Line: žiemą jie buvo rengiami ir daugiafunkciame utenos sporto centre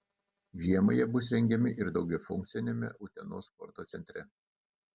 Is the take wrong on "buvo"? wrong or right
wrong